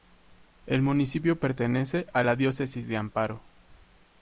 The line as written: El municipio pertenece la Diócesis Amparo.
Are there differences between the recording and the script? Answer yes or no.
yes